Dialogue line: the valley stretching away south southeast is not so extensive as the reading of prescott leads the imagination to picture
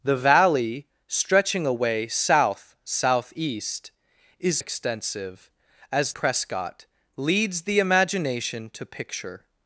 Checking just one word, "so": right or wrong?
wrong